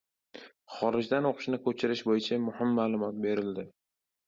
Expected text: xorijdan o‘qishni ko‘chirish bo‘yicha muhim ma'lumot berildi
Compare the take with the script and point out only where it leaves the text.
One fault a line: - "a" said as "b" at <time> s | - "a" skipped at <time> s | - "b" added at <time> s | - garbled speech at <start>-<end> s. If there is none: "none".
none